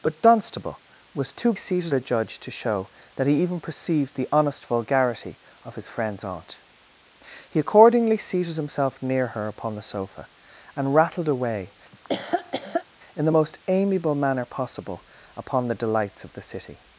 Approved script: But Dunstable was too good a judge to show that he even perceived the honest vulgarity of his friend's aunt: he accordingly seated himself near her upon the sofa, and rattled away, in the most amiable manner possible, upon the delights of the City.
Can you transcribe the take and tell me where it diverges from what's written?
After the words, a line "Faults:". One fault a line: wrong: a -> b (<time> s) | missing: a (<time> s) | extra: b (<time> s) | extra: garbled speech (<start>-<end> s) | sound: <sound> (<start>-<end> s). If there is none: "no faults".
But Dunstable was too seated a judge to show that he even perceived the honest vulgarity of his friend's aunt: he accordingly seated himself near her upon the sofa, and rattled away, in the most amiable manner possible, upon the delights of the City.
Faults:
wrong: good -> seated (1.5 s)
sound: laugh (11.9-12.9 s)